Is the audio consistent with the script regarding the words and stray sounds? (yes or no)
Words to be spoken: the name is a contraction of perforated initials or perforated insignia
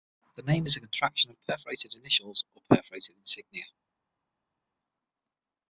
yes